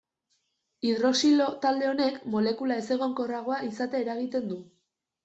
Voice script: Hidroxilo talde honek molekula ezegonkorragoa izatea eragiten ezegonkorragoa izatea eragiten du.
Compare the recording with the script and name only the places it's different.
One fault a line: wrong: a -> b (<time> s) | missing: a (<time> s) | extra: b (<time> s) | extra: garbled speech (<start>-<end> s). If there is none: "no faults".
missing: ezegonkorragoa izatea eragiten (4.5 s)